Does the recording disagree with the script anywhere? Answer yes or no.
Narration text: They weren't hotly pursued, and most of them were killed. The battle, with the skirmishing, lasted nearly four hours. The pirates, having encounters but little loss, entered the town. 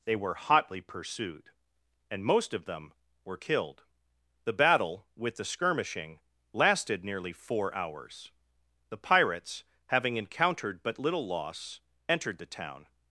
yes